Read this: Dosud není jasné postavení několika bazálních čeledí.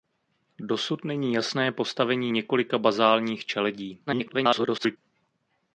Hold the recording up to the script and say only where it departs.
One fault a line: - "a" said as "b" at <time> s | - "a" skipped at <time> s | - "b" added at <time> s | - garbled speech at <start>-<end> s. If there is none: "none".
- garbled speech at 4.1-5.0 s